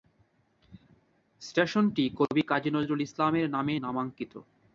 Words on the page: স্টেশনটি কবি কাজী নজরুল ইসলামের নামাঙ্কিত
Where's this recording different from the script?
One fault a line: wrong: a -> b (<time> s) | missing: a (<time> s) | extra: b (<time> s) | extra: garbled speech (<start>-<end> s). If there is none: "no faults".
extra: নামে (3.5 s)